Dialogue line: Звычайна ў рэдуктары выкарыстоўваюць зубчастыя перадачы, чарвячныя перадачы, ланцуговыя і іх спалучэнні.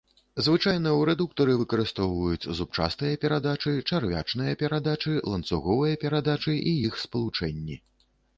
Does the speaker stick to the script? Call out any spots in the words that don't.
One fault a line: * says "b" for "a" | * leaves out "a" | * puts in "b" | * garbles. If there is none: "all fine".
* puts in "перадачы"